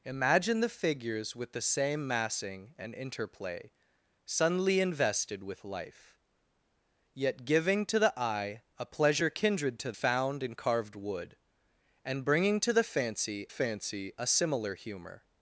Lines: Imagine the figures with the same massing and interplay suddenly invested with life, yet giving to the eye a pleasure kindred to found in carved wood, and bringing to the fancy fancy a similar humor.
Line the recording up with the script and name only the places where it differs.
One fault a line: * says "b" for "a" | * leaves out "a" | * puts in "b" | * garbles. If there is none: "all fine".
all fine